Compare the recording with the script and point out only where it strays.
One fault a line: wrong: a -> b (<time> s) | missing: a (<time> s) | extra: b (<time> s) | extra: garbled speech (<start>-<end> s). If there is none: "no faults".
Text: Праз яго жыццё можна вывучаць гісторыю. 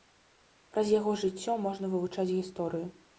no faults